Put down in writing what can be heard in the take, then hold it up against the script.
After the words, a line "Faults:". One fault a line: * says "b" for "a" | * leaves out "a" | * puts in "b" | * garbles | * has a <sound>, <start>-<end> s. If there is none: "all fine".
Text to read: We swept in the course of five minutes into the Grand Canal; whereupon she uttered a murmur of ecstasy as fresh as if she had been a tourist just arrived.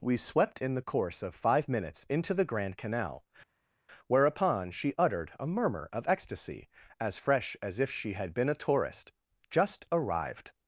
We swept in the course of five minutes into the Grand Canal; whereupon she uttered a murmur of ecstasy as fresh as if she had been a tourist just arrived.
Faults:
all fine